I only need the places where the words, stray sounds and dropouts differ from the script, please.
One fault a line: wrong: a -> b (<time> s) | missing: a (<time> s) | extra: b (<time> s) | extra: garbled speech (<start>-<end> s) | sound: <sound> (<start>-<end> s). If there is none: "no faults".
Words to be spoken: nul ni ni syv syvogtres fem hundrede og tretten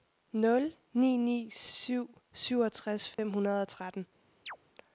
sound: dropout (3.1-3.2 s)
sound: chirp (4.5-4.6 s)